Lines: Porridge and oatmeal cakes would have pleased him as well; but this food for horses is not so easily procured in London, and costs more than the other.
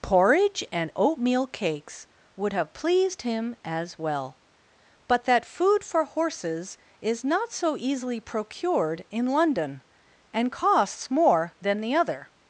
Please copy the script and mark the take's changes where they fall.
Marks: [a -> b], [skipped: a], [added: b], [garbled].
Porridge and oatmeal cakes would have pleased him as well; but [this -> that] food for horses is not so easily procured in London, and costs more than the other.